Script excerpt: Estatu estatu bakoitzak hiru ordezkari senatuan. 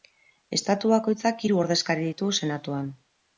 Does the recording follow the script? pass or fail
fail